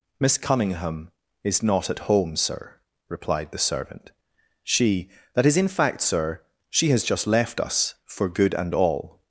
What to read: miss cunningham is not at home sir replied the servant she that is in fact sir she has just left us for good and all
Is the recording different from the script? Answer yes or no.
no